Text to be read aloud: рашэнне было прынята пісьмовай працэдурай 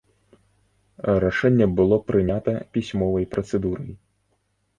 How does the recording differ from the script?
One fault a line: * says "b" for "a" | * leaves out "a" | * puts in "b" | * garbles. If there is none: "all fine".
all fine